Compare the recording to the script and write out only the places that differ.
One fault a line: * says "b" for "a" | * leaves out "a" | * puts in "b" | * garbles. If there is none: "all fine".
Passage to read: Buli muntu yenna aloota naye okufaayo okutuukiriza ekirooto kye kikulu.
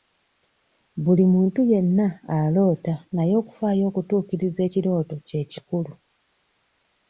all fine